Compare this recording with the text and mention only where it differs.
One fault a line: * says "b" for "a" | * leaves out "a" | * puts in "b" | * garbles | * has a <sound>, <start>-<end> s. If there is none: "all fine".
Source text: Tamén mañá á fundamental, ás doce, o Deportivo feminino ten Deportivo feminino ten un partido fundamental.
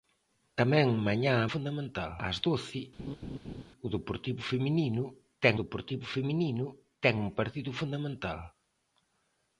* has a laugh, 3.0-3.6 s